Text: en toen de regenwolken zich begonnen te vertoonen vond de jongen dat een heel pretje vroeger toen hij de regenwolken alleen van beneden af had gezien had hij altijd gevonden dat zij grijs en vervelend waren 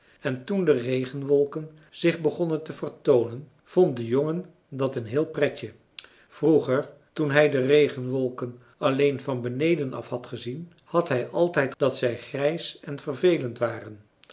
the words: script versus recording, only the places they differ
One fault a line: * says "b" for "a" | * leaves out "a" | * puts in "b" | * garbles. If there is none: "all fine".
* leaves out "gevonden"